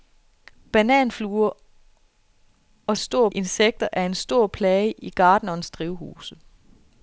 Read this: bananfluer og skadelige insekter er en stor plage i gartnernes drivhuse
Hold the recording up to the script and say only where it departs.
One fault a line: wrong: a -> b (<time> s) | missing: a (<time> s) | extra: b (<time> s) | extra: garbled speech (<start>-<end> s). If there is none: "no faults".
wrong: skadelige -> stor (3.0 s)